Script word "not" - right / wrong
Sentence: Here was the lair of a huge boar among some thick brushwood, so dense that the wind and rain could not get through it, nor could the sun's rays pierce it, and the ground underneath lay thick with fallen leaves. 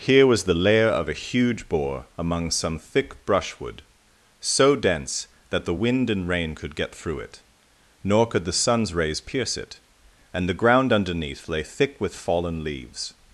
wrong